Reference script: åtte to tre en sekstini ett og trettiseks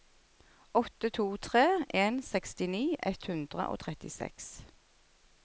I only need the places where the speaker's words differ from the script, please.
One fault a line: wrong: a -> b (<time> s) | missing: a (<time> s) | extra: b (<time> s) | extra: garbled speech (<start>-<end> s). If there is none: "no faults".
extra: hundre (3.3 s)